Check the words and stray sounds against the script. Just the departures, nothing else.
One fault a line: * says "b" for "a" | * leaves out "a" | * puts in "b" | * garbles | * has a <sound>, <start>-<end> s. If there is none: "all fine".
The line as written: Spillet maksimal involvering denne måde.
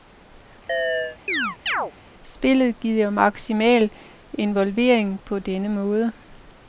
* has a chirp, 0.7-1.9 s
* puts in "giver"
* puts in "på"